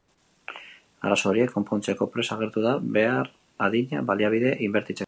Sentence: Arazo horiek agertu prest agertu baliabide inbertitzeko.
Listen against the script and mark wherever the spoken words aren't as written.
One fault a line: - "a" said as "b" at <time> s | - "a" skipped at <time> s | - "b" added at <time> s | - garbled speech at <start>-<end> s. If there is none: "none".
- "agertu" said as "konpontzeko" at 1.6 s
- "da behar adina" added at 2.6 s